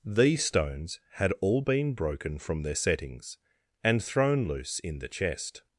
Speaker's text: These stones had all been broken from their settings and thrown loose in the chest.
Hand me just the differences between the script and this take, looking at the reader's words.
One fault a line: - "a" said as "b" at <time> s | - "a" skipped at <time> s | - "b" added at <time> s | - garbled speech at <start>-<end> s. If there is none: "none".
none